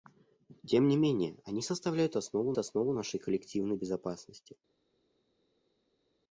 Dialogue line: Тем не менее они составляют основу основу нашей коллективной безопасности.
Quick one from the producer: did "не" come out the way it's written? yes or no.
yes